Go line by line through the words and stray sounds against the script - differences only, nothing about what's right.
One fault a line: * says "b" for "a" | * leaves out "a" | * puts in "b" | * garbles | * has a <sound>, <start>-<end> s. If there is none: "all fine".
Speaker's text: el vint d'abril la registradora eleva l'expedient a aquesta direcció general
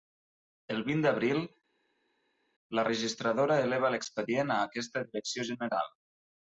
all fine